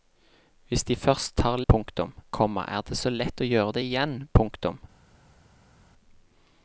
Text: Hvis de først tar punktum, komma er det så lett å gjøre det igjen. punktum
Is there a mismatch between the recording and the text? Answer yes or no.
no